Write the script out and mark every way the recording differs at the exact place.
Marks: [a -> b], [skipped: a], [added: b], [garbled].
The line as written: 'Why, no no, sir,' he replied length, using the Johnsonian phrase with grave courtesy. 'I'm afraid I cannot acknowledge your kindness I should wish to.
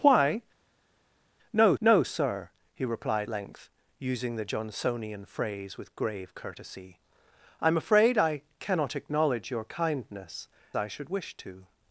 'Why, no no, sir,' he replied length, using the Johnsonian phrase with grave courtesy. 'I'm afraid I cannot acknowledge your kindness I should wish to.